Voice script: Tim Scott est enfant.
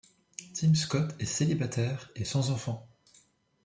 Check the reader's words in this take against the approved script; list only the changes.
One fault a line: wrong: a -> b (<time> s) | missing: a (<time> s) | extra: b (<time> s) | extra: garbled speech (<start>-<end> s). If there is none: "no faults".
extra: célibataire et sans (1.2 s)